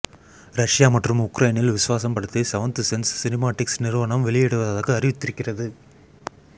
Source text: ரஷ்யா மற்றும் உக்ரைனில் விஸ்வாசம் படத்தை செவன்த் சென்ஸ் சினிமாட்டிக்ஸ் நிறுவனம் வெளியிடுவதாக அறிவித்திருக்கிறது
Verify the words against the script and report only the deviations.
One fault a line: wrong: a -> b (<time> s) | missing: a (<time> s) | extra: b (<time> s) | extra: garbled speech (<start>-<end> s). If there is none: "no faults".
no faults